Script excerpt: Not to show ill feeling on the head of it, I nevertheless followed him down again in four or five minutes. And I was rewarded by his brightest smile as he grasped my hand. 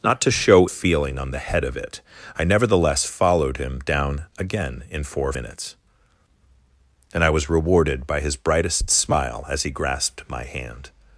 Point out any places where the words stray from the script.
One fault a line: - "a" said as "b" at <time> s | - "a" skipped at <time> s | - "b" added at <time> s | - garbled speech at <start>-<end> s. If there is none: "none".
- "ill" skipped at 0.7 s
- "five" skipped at 5.3 s